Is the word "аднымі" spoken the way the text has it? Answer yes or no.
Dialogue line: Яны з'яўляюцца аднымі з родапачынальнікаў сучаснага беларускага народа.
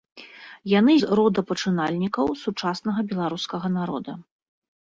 no